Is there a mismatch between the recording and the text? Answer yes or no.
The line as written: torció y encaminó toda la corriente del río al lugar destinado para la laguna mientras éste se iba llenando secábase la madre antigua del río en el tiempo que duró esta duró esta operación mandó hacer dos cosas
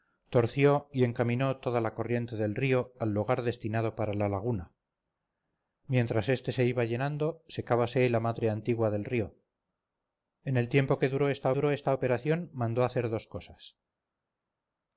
no